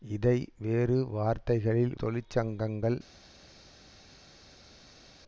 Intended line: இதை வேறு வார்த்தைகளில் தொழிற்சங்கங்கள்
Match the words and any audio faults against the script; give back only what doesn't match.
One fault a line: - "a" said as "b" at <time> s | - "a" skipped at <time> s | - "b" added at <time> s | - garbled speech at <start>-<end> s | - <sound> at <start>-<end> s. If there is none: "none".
none